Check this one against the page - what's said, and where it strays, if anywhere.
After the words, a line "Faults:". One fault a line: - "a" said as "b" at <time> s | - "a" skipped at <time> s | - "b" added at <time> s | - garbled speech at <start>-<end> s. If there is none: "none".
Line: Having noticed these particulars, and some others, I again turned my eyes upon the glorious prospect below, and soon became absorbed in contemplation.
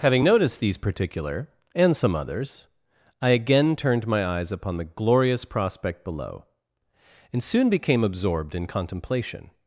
Having noticed these particular, and some others, I again turned my eyes upon the glorious prospect below, and soon became absorbed in contemplation.
Faults:
- "particulars" said as "particular" at 0.8 s